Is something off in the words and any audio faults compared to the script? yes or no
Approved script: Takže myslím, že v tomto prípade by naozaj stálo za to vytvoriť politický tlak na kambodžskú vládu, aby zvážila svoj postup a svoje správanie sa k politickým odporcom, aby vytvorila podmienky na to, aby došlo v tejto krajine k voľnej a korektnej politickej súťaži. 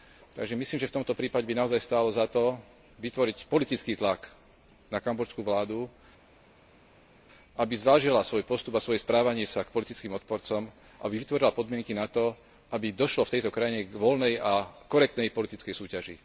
no